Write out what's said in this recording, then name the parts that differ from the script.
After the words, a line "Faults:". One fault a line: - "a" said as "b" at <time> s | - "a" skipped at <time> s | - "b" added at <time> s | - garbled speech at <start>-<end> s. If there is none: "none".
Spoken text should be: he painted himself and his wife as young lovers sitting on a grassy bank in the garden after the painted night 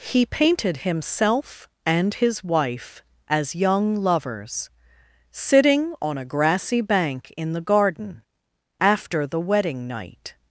he painted himself and his wife as young lovers sitting on a grassy bank in the garden after the wedding night
Faults:
- "painted" said as "wedding" at 9.4 s